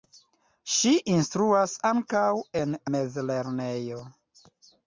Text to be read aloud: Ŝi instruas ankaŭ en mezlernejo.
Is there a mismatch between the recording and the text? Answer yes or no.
no